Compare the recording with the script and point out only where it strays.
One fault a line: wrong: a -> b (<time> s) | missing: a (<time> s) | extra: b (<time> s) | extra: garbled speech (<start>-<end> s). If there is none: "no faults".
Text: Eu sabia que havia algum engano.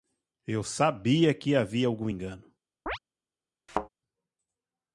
no faults